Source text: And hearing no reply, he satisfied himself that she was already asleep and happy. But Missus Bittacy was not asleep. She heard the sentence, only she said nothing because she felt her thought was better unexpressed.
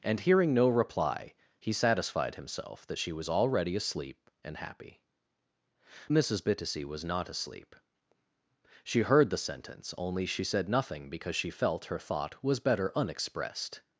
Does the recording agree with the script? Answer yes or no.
no